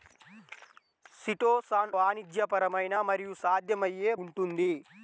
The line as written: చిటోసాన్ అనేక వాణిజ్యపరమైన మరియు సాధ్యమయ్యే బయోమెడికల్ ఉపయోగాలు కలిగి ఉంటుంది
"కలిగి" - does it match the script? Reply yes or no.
no